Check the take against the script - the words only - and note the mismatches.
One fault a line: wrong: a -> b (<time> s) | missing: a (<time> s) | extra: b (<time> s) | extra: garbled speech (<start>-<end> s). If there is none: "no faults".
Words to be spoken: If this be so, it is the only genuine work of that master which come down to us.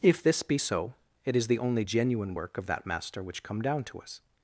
no faults